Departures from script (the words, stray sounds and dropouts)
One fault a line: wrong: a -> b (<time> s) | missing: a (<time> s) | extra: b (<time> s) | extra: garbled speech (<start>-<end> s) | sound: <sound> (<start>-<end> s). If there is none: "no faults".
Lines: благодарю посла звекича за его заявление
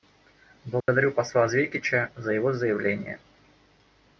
sound: dropout (0.8-0.9 s)